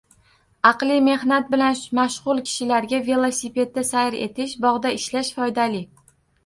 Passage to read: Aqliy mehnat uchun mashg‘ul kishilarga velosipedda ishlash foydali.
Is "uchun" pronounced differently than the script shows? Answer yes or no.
yes